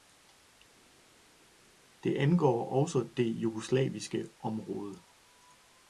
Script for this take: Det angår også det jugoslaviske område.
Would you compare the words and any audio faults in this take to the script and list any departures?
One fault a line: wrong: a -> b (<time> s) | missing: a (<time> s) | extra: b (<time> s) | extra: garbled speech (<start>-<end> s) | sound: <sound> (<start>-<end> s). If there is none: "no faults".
no faults